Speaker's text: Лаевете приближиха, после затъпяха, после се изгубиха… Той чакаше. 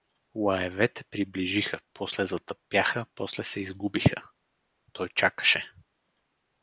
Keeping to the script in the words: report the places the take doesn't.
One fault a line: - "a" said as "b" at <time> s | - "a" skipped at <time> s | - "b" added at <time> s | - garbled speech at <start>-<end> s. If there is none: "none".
none